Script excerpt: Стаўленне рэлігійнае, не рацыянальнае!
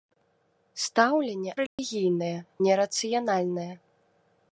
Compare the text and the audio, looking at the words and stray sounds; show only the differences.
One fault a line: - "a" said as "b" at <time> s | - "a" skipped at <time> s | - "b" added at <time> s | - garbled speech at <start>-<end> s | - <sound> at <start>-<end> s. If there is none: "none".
- dropout at 1.7-1.8 s